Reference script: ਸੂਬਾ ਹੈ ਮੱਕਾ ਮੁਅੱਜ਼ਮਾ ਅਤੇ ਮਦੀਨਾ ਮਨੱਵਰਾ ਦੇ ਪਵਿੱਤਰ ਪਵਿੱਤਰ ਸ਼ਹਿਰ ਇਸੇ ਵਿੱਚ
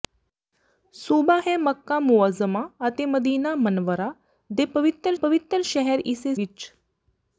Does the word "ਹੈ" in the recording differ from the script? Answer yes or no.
no